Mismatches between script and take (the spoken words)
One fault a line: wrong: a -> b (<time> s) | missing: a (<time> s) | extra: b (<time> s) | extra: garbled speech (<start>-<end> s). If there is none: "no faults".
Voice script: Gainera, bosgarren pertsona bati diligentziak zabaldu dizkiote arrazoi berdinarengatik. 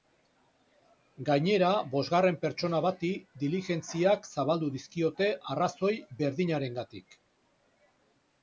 no faults